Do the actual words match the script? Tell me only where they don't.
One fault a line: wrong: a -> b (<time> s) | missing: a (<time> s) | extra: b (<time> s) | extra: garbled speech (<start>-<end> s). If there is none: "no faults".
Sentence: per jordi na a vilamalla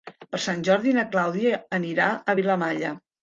extra: sant (0.5 s)
extra: clàudia anirà (1.1 s)